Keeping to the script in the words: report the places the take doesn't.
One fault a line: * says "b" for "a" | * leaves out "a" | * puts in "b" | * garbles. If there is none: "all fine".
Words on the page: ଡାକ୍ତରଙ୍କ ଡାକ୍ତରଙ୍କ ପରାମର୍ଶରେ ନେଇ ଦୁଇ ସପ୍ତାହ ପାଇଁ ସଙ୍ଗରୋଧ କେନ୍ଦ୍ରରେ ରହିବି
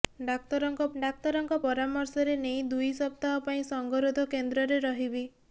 all fine